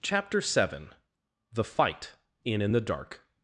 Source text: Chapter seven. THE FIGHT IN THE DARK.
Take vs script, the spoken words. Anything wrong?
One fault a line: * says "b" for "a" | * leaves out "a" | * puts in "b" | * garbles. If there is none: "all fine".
* puts in "IN"